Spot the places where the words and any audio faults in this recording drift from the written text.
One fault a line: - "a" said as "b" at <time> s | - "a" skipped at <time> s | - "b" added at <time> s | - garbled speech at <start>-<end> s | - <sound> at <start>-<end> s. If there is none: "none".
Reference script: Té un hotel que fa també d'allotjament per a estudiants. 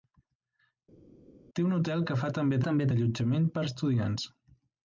- "també" added at 2.7 s